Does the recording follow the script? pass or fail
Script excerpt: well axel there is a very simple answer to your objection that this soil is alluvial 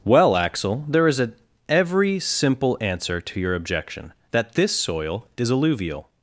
fail